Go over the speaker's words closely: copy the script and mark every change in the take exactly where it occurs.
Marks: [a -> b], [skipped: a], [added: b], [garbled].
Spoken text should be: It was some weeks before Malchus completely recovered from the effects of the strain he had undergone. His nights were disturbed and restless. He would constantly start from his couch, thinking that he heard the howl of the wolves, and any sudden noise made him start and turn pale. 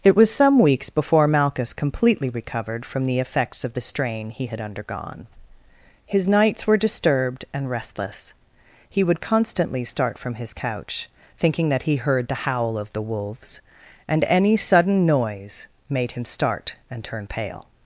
It was some weeks before Malchus completely recovered from the effects of the strain he had undergone. His nights were disturbed and restless. He would constantly start from his couch, thinking that he heard the howl of the wolves, and any sudden noise made him start and turn pale.